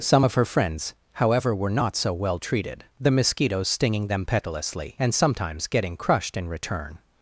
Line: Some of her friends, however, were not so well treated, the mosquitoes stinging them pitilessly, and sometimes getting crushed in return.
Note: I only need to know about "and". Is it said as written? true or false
true